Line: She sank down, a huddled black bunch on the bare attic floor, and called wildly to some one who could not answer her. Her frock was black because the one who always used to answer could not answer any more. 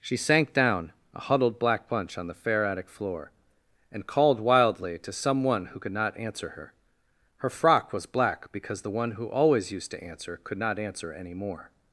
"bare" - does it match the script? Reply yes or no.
no